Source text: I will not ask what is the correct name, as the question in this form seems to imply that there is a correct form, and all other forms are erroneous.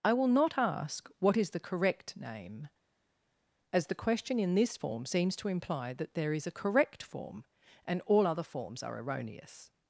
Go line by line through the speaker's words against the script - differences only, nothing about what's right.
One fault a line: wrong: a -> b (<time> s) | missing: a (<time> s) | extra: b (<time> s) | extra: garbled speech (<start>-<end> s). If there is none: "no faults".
no faults